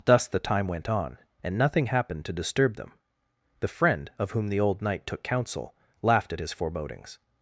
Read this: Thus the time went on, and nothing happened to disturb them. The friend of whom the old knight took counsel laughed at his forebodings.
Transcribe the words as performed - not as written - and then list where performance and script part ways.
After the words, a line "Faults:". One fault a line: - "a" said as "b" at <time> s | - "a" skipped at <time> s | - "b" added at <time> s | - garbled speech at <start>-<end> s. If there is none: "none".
Thus the time went on, and nothing happened to disturb them. The friend of whom the old knight took counsel laughed at his forebodings.
Faults:
none